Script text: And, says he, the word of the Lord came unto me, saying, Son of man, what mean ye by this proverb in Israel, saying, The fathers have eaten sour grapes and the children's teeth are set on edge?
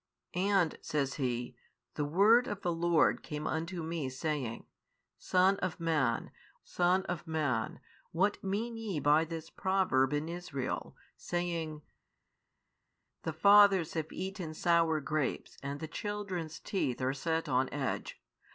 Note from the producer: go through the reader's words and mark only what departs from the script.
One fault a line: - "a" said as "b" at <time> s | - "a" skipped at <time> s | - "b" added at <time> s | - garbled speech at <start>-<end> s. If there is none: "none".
- "Son of man" added at 6.6 s